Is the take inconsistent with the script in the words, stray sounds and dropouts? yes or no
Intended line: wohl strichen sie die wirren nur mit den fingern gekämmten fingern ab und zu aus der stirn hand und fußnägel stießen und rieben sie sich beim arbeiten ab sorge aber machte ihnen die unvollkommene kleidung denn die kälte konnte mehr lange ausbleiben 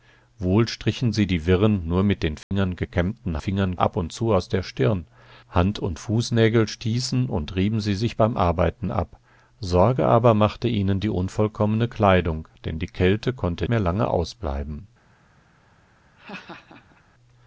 yes